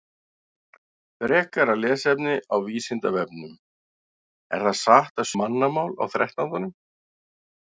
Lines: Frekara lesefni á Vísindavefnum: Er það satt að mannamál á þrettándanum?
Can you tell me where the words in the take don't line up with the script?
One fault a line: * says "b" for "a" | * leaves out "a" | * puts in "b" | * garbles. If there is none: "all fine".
all fine